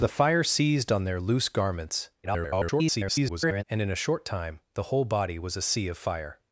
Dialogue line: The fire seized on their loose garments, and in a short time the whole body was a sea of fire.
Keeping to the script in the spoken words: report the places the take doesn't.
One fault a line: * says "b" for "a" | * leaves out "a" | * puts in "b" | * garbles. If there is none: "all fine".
* garbles